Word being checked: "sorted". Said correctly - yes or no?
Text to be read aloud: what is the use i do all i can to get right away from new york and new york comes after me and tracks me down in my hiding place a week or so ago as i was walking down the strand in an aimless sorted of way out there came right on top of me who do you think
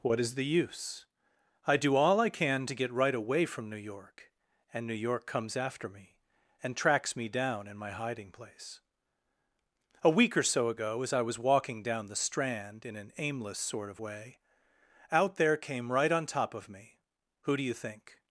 no